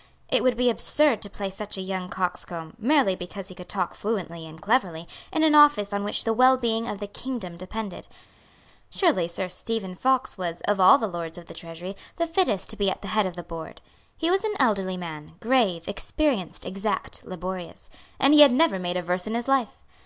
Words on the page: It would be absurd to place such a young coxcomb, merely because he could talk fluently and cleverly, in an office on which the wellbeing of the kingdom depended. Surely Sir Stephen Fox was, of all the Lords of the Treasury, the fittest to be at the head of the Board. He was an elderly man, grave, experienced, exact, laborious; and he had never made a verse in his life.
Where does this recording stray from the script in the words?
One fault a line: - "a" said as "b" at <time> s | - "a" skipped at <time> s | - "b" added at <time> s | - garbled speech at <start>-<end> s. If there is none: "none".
none